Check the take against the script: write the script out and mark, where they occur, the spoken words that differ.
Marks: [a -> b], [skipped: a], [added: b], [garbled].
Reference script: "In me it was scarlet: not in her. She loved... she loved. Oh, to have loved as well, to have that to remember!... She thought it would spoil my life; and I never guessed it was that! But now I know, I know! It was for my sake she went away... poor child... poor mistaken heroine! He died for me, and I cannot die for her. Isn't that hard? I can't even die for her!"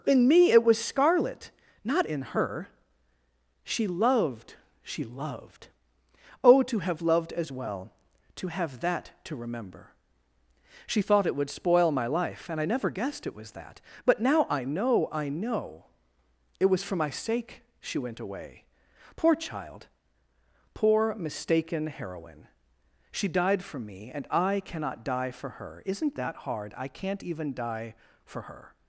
"In me it was scarlet: not in her. She loved... she loved. Oh, to have loved as well, to have that to remember!... She thought it would spoil my life; and I never guessed it was that! But now I know, I know! It was for my sake she went away... poor child... poor mistaken heroine! [He -> She] died for me, and I cannot die for her. Isn't that hard? I can't even die for her!"